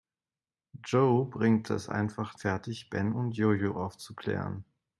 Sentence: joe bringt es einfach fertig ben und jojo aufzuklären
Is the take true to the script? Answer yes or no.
yes